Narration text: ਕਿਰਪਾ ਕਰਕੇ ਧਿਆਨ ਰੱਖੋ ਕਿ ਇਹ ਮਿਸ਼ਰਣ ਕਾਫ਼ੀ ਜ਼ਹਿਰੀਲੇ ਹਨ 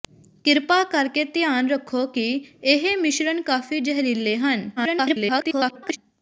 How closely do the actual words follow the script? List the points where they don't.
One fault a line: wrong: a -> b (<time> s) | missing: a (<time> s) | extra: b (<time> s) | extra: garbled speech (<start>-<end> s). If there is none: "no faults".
extra: garbled speech (4.8-6.0 s)